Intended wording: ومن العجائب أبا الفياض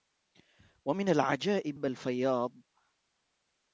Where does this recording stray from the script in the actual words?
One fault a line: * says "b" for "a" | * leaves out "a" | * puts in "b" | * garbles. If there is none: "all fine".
all fine